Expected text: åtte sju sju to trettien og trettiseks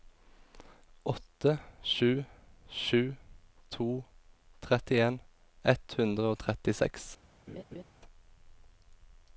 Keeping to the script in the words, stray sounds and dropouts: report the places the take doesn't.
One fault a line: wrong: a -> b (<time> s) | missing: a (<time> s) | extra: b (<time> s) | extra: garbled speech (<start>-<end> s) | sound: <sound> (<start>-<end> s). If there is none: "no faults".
extra: ett hundre (5.7 s)
sound: laugh (7.5-7.8 s)